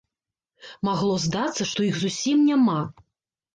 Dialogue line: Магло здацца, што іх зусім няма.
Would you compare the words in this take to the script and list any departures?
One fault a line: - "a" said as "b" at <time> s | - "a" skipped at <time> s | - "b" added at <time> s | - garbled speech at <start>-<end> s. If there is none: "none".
none